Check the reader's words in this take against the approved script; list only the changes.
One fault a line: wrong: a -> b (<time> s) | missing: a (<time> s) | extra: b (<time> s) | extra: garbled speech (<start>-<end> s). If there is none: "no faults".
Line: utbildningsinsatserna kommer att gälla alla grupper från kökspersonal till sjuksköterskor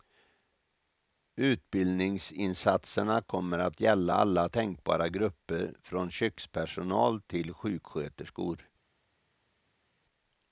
extra: tänkbara (4.5 s)